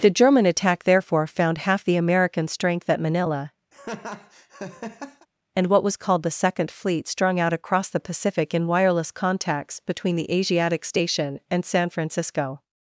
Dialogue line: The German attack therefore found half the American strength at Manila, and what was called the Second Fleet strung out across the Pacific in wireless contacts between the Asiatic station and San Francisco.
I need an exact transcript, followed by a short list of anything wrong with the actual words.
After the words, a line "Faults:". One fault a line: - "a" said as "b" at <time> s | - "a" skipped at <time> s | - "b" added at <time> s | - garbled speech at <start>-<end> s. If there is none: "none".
The German attack therefore found half the American strength at Manila, and what was called the Second Fleet strung out across the Pacific in wireless contacts between the Asiatic station and San Francisco.
Faults:
none